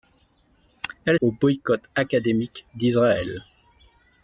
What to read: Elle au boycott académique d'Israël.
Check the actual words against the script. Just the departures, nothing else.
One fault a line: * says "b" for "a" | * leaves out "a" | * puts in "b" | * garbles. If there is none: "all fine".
all fine